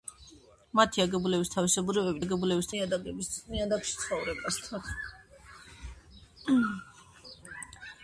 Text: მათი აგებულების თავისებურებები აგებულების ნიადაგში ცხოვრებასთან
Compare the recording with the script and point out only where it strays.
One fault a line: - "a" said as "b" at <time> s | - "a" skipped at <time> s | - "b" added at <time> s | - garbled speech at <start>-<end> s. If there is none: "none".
none